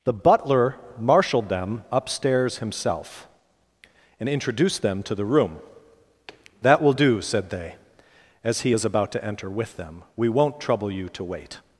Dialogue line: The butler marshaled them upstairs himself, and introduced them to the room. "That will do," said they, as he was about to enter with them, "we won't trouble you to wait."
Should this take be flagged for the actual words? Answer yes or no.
yes